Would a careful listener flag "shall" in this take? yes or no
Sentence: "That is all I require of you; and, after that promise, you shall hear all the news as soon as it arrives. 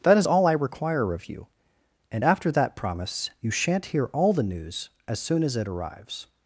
yes